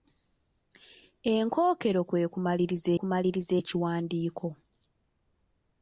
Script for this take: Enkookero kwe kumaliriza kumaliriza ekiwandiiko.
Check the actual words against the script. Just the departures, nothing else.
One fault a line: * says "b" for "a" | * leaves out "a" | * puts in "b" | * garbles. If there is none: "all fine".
all fine